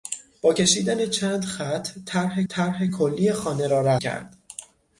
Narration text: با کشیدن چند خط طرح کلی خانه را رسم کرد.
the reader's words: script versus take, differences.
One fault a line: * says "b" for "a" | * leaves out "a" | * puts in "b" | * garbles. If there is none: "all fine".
* puts in "طرح"
* leaves out "رسم"